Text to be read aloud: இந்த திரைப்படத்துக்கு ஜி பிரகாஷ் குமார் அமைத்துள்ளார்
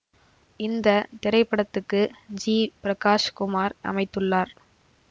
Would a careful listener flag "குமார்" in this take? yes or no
no